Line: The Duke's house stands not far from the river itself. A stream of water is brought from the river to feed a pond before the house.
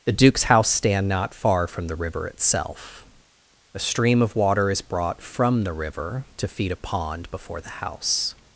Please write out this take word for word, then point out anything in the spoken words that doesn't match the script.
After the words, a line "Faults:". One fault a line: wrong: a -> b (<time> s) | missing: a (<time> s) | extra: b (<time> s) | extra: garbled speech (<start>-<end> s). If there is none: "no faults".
The Duke's house stand not far from the river itself. A stream of water is brought from the river to feed a pond before the house.
Faults:
wrong: stands -> stand (0.7 s)